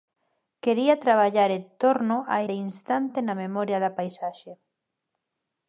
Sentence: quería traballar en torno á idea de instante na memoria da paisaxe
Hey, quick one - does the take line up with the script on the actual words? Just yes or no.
no